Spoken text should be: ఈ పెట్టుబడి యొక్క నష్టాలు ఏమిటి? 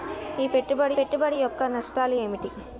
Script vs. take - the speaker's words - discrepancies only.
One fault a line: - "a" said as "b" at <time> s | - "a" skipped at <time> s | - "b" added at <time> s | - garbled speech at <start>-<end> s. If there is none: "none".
- "పెట్టుబడి" added at 0.9 s